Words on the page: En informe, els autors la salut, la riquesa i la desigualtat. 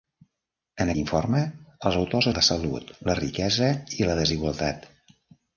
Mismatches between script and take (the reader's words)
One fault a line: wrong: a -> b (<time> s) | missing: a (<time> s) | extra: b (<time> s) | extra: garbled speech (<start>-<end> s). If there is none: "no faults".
no faults